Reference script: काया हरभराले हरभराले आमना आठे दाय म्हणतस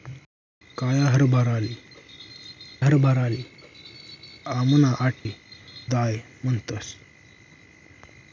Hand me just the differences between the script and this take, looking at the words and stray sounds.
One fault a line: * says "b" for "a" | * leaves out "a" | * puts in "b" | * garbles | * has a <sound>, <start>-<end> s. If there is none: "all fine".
* has a dropout, 5.2-5.3 s